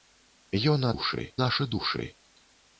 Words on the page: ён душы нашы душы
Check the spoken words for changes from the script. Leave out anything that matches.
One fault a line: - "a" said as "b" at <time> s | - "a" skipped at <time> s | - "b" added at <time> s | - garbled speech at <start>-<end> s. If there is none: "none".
none